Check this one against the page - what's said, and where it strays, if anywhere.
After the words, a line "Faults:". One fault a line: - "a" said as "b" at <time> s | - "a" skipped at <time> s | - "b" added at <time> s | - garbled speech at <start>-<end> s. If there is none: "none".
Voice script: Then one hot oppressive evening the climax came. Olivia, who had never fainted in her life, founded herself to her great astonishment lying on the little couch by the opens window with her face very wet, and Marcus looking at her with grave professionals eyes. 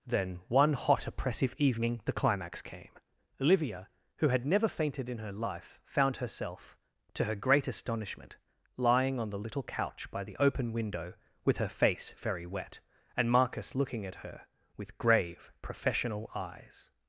Then one hot oppressive evening the climax came. Olivia, who had never fainted in her life, found herself to her great astonishment lying on the little couch by the open window with her face very wet, and Marcus looking at her with grave professional eyes.
Faults:
- "founded" said as "found" at 5.8 s
- "opens" said as "open" at 10.4 s
- "professionals" said as "professional" at 15.6 s